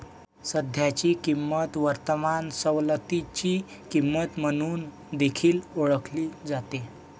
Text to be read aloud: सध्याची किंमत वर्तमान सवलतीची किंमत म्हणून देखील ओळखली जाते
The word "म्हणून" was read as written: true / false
true